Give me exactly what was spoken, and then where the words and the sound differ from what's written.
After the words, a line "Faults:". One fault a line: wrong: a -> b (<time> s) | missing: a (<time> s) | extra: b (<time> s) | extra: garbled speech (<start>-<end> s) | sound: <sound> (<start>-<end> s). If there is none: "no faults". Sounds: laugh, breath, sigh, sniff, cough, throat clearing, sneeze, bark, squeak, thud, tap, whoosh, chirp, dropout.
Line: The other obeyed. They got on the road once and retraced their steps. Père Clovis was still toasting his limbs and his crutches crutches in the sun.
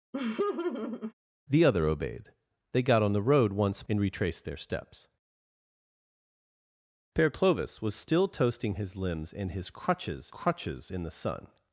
The other obeyed. They got on the road once and retraced their steps. Père Clovis was still toasting his limbs and his crutches crutches in the sun.
Faults:
sound: laugh (0.1-1.1 s)